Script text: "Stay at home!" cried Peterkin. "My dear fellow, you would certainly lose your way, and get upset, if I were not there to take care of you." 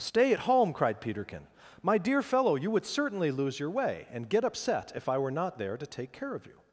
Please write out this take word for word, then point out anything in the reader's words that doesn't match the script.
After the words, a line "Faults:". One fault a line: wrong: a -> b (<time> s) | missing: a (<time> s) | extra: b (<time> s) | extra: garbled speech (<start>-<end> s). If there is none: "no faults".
"Stay at home!" cried Peterkin. "My dear fellow, you would certainly lose your way, and get upset, if I were not there to take care of you."
Faults:
no faults